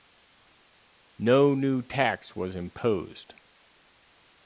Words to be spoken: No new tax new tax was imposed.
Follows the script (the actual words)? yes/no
no